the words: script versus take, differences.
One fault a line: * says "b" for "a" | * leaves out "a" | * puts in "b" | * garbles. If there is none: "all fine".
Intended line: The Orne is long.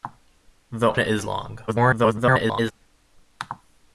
* leaves out "Orne"
* garbles